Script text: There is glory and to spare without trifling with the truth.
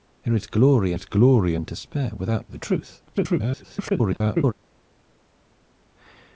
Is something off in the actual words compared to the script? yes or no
yes